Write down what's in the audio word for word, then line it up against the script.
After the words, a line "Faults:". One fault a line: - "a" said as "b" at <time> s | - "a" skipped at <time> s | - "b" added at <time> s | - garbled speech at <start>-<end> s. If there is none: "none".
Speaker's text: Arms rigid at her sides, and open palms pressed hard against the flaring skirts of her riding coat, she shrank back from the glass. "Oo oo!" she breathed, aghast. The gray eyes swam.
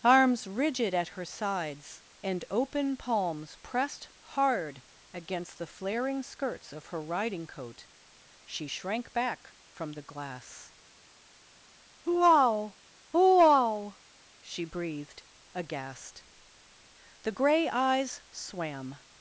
Arms rigid at her sides, and open palms pressed hard against the flaring skirts of her riding coat, she shrank back from the glass. "Wow wow!" she breathed, aghast. The gray eyes swam.
Faults:
- "Oo oo" said as "Wow wow" at 12.0 s